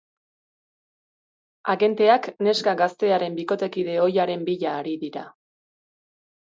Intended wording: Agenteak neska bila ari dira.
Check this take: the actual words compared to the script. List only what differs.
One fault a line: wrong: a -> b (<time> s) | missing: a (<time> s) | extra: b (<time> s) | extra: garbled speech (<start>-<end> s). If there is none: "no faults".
extra: gaztearen bikotekide ohiaren (2.8 s)